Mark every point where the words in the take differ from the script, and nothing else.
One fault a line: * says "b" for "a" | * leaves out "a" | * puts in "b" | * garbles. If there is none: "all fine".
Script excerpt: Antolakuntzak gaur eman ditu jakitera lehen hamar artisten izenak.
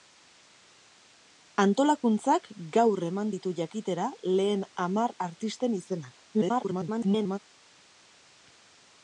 * garbles